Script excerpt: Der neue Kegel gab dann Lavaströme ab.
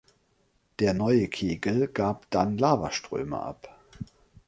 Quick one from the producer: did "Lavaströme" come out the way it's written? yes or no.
yes